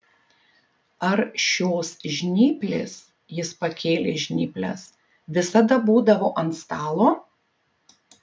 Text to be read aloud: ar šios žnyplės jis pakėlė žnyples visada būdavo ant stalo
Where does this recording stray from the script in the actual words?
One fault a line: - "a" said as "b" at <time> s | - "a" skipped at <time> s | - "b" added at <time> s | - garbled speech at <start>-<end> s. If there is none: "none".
none